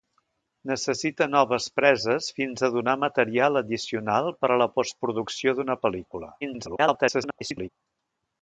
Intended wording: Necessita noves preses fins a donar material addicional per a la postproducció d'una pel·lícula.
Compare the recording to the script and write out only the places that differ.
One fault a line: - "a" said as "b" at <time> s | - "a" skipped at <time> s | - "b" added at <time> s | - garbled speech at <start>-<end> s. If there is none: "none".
- garbled speech at 6.4-7.7 s